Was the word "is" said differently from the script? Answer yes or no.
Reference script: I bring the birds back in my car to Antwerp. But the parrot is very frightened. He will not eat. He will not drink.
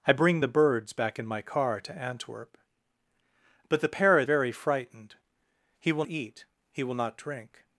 yes